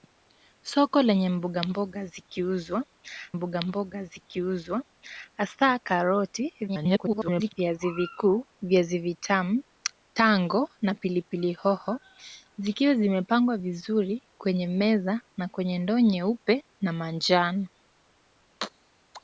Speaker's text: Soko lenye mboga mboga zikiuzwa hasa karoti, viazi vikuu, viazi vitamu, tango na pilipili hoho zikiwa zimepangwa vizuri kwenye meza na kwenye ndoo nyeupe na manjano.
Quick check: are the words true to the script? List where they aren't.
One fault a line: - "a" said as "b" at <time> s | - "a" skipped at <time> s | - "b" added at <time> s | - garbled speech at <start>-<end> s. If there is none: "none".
- "mboga mboga zikiuzwa" added at 3.3 s
- garbled speech at 6.7-7.5 s